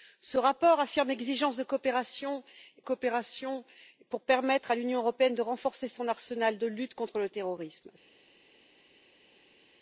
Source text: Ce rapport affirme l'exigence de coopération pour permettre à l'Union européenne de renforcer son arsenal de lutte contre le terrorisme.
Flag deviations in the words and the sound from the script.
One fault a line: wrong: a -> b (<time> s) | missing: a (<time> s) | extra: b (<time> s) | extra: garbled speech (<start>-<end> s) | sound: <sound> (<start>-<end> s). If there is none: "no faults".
extra: coopération (2.8 s)